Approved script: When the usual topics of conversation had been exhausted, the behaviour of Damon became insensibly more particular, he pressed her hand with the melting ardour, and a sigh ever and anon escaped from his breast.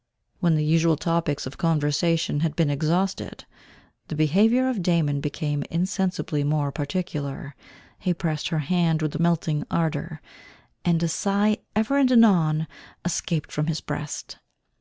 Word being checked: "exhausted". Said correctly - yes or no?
yes